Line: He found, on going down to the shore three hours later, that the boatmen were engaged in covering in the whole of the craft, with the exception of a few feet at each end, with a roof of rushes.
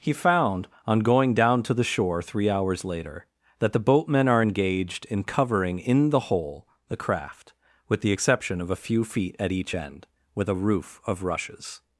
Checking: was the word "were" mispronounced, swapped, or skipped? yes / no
yes